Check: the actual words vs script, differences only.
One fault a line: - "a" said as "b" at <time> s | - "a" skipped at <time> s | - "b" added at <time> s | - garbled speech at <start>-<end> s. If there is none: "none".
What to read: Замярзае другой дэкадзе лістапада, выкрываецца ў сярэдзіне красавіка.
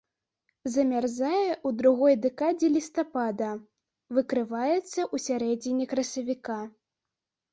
- "ў" added at 1.5 s